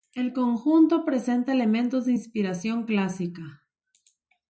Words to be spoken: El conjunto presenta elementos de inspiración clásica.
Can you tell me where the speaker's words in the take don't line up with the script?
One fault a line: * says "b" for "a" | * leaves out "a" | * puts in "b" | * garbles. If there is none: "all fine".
all fine